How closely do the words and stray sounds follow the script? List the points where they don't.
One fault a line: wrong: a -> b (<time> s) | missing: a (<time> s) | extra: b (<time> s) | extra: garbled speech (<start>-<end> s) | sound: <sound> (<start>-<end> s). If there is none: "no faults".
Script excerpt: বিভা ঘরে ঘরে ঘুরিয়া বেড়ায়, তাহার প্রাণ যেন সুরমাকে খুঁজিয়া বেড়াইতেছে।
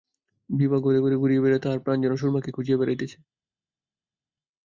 no faults